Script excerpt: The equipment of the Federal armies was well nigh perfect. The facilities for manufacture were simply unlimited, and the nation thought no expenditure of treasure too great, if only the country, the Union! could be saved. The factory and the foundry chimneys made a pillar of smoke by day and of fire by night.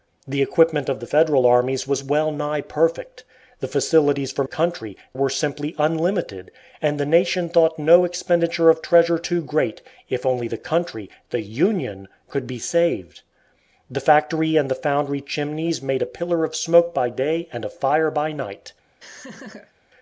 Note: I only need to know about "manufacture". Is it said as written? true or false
false